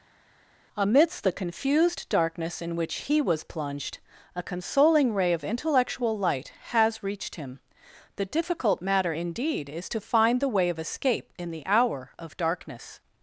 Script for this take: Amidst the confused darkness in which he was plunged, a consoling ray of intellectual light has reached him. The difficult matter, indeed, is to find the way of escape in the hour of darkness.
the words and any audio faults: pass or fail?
pass